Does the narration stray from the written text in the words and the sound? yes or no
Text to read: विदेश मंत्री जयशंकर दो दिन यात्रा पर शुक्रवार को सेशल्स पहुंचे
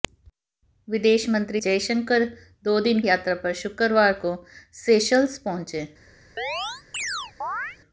yes